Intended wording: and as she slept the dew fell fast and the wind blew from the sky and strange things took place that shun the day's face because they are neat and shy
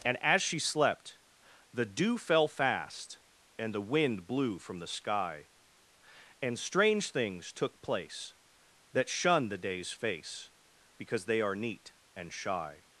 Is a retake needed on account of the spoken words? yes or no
no